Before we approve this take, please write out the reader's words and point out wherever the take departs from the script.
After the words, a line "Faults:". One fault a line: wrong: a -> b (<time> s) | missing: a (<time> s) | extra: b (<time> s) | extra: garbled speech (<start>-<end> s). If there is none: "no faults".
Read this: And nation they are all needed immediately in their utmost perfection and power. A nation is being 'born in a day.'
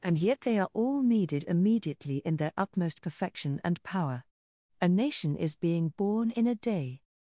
And yet they are all needed immediately in their utmost perfection and power. A nation is being 'born in a day.'
Faults:
wrong: nation -> yet (0.2 s)